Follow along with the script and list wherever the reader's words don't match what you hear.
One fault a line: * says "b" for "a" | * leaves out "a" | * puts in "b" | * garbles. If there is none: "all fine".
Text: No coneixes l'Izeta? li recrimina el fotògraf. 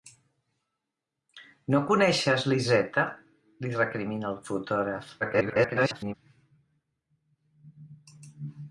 * garbles